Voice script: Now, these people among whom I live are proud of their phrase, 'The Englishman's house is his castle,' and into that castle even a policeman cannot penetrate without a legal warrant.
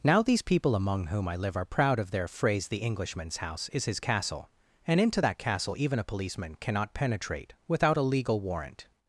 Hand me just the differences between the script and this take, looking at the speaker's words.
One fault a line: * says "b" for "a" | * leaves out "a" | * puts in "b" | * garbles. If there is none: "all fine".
all fine